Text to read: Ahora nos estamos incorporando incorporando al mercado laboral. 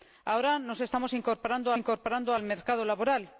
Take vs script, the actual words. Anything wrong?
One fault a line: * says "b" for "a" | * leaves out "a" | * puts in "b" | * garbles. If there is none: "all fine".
all fine